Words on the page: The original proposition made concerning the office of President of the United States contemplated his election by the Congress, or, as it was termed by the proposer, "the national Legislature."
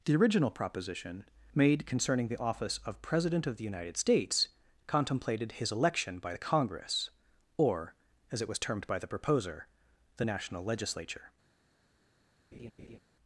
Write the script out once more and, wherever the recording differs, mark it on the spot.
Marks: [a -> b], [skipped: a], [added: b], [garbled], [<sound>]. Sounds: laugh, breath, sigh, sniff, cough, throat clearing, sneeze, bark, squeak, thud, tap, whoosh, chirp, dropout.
The original proposition made concerning the office of President of the United States contemplated his election by the Congress, or, as it was termed by the proposer, "the national Legislature." [laugh]